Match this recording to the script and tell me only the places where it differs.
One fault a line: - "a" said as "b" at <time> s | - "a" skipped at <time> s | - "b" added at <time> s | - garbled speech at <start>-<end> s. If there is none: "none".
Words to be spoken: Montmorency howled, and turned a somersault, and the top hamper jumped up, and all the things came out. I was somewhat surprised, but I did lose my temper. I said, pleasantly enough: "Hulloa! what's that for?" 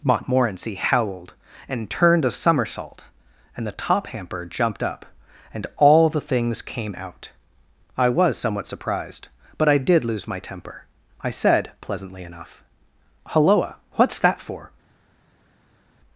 none